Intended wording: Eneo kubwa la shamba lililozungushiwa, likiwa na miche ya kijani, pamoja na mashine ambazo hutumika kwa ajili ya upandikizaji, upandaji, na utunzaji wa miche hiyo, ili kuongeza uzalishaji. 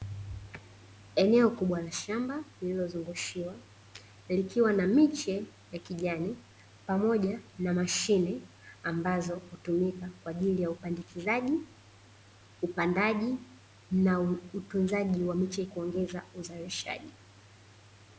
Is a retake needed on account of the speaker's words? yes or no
yes